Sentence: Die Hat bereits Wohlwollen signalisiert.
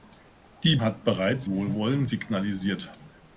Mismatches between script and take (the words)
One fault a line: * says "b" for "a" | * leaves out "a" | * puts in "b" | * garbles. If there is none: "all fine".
all fine